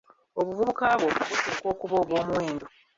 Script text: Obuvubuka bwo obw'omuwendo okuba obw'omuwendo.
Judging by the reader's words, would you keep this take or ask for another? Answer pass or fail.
fail